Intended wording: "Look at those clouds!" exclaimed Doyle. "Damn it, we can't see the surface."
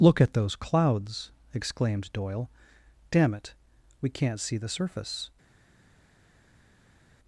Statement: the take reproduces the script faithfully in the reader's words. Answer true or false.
true